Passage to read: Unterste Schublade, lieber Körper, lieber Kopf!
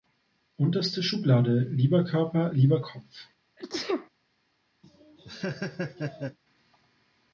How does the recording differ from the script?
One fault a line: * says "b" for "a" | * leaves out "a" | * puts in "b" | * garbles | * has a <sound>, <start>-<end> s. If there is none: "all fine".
* has a sneeze, 3.6-4.1 s
* has a laugh, 4.8-6.4 s